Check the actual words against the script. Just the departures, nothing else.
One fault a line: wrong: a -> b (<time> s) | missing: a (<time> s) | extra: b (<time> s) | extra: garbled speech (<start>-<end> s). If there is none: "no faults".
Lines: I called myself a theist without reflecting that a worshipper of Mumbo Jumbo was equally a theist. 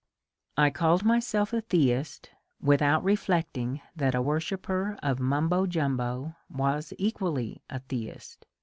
no faults